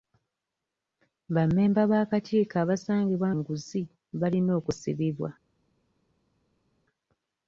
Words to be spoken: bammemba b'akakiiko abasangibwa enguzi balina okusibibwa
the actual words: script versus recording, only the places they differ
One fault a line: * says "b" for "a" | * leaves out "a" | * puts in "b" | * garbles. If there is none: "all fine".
all fine